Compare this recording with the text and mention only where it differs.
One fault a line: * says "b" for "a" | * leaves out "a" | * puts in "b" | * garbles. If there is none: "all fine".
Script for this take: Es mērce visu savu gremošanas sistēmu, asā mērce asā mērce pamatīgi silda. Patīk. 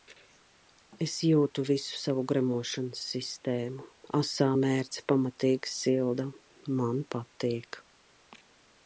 * says "jūtu" for "mērce"
* leaves out "asā mērce"
* puts in "Man"